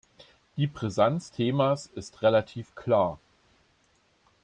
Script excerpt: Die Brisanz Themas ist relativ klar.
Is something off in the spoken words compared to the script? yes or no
no